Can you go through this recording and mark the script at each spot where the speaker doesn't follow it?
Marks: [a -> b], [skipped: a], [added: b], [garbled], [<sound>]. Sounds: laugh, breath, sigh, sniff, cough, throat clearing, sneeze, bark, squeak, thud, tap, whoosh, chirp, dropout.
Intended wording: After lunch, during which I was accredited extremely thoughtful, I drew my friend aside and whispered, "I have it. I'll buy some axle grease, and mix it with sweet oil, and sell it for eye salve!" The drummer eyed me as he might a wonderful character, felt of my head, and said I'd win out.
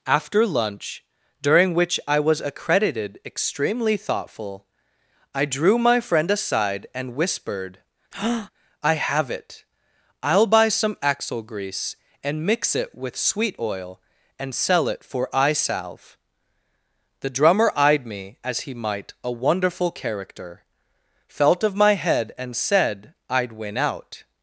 After lunch, during which I was accredited extremely thoughtful, I drew my friend aside and whispered, [breath] "I have it. I'll buy some axle grease, and mix it with sweet oil, and sell it for eye salve!" The drummer eyed me as he might a wonderful character, felt of my head, and said I'd win out.